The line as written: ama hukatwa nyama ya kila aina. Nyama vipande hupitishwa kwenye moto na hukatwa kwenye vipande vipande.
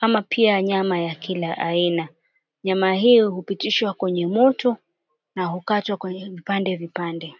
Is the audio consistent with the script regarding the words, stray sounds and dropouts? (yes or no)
no